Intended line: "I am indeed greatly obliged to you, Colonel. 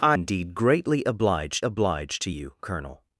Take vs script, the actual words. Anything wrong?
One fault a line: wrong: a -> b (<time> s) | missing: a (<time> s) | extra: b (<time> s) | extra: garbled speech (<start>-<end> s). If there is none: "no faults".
missing: am (0.2 s)
extra: obliged (1.6 s)